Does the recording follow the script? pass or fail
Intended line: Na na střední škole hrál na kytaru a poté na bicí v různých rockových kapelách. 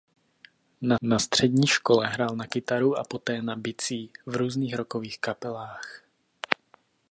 pass